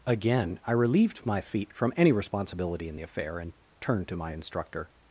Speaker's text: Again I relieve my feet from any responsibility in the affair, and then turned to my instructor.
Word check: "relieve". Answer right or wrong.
wrong